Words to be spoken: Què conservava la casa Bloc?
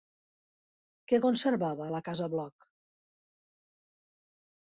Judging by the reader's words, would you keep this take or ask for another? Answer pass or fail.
pass